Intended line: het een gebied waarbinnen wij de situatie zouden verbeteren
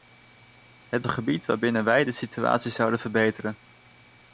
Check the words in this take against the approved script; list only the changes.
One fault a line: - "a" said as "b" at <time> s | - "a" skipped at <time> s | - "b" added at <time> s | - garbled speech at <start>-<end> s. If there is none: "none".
none